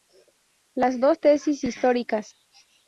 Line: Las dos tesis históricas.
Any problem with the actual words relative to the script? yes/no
no